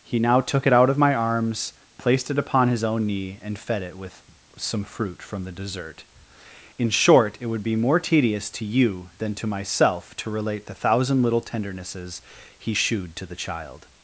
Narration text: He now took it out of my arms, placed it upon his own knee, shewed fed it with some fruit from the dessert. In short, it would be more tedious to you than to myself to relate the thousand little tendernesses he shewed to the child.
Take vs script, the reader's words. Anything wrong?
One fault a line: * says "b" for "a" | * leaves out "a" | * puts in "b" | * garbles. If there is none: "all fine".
* says "and" for "shewed"